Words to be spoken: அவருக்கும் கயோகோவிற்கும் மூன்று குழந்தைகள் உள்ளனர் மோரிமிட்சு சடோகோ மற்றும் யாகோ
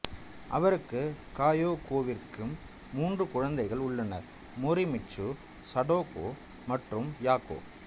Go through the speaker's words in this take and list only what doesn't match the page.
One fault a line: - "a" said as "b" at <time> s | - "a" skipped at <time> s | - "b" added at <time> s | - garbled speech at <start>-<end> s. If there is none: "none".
none